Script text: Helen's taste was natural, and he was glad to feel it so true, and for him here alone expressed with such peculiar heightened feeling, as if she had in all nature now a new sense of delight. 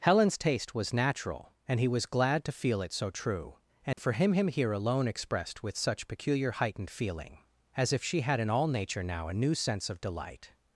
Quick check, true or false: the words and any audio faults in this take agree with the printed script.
false